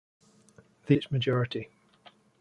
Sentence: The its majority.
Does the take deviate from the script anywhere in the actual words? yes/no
no